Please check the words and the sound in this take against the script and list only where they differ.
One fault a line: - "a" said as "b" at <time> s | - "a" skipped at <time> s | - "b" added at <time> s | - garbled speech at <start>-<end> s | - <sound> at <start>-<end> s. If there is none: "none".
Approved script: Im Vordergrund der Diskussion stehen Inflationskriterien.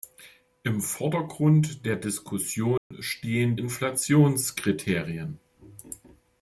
- dropout at 2.8-2.9 s